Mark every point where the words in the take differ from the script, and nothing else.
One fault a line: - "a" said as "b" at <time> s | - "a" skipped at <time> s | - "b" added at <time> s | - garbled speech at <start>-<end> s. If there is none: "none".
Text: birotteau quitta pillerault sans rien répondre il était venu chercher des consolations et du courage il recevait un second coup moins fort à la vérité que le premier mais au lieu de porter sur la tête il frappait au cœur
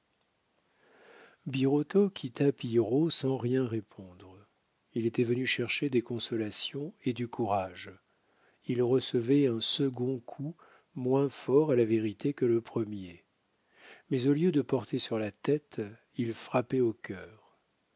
none